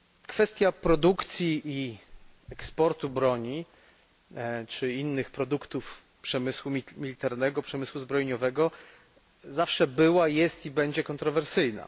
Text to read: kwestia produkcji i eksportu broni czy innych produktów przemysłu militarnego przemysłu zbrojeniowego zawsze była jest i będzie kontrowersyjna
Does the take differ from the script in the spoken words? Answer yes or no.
no